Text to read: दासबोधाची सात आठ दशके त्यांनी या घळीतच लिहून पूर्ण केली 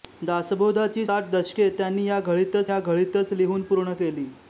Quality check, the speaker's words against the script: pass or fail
fail